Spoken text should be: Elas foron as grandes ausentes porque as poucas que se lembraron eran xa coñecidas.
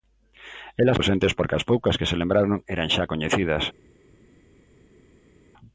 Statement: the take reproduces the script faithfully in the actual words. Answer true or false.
false